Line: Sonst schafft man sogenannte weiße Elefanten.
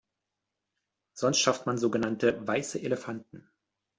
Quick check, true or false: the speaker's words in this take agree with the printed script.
true